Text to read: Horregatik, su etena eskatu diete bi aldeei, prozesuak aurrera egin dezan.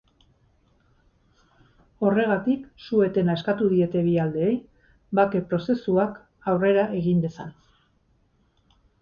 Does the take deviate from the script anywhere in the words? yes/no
yes